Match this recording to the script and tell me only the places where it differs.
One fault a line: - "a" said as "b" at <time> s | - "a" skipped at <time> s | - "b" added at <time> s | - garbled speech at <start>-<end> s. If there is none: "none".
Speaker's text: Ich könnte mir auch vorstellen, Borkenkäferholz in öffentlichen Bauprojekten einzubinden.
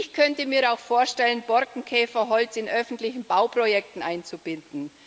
none